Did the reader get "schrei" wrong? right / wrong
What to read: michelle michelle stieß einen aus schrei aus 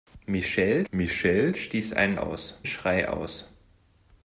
right